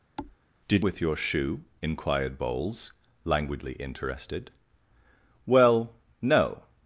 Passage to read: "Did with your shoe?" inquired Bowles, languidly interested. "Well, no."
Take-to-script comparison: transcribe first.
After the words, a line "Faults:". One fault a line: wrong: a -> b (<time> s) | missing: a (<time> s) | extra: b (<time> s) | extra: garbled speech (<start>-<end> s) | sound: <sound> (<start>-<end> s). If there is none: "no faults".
"Did with your shoe?" inquired Bowles, languidly interested. "Well, no."
Faults:
sound: thud (0.2-0.4 s)